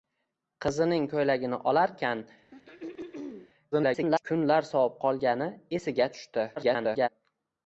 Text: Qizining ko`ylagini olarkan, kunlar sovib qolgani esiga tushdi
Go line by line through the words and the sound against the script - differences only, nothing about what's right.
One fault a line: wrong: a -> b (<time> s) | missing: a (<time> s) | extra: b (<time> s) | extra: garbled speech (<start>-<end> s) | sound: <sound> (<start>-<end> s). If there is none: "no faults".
sound: throat clearing (2.5-3.5 s)
extra: garbled speech (3.7-4.2 s)
extra: garbled speech (6.6-7.1 s)